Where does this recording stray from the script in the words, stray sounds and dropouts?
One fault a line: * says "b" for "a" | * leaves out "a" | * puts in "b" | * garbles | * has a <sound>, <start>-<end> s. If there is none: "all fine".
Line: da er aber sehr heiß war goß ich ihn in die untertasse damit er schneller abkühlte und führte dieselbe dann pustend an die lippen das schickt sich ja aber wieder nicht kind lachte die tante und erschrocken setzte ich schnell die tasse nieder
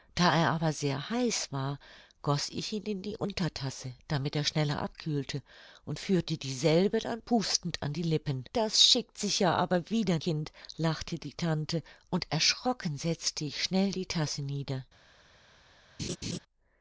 * leaves out "nicht"
* has a laugh, 16.0-16.4 s